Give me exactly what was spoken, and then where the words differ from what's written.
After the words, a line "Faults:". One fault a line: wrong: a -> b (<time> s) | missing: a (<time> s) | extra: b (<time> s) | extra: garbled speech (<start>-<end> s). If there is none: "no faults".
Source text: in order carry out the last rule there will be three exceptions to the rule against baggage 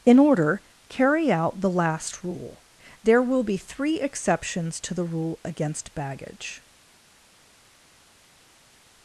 in order carry out the last rule there will be three exceptions to the rule against baggage
Faults:
no faults